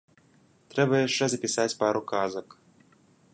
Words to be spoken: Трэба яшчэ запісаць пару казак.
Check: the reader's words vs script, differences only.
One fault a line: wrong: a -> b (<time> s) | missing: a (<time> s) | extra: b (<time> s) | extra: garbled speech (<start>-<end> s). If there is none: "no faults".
no faults